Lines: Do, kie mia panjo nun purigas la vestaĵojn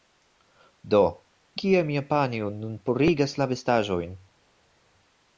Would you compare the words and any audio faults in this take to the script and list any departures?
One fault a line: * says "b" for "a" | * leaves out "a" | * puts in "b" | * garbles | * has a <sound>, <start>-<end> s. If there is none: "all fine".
all fine